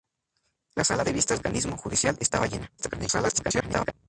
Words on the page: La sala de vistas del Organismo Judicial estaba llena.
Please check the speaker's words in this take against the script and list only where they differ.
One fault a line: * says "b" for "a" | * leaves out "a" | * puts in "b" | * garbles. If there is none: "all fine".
* leaves out "del"
* garbles